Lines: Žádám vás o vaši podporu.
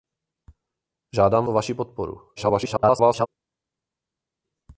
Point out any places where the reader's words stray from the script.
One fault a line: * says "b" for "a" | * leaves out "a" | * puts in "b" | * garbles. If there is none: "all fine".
* leaves out "vás"
* garbles